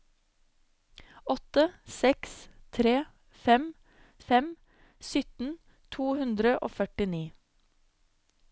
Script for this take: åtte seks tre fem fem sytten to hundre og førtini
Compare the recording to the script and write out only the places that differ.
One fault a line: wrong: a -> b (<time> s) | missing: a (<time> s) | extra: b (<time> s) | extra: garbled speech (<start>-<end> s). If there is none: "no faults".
no faults